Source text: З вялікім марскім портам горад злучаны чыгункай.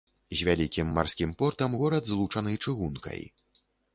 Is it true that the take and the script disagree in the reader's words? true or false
false